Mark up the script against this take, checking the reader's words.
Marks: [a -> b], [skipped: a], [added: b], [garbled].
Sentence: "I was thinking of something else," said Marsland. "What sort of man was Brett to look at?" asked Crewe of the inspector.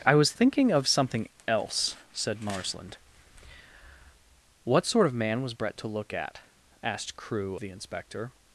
"I was thinking of something else," said Marsland. "What sort of man was Brett to look at?" asked Crewe [skipped: of] the inspector.